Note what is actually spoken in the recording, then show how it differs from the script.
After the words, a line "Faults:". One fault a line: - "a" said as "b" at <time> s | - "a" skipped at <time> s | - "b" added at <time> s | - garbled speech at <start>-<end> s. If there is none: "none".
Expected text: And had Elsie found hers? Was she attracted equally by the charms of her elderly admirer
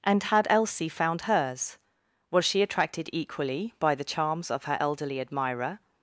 And had Elsie found hers? Was she attracted equally by the charms of her elderly admirer
Faults:
none